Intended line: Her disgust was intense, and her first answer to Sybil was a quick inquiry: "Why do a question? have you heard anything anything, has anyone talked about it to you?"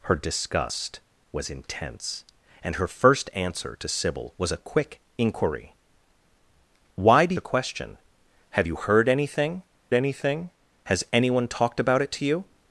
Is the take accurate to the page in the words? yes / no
yes